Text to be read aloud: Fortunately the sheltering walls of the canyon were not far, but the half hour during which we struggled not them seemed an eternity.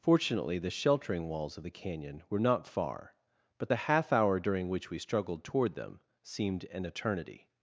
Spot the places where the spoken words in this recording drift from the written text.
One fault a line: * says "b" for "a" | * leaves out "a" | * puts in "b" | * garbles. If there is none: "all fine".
* says "toward" for "not"